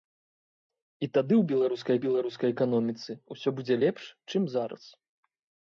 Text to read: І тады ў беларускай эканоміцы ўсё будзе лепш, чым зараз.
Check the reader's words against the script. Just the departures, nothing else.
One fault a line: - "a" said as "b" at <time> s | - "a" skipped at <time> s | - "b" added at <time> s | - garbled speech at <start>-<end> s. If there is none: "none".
- "беларускай" added at 2.0 s